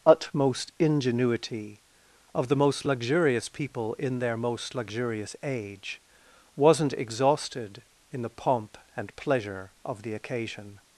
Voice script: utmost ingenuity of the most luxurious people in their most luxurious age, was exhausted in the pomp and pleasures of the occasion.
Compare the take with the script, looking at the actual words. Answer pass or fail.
fail